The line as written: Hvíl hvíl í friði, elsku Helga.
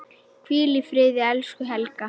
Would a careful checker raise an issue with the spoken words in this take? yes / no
yes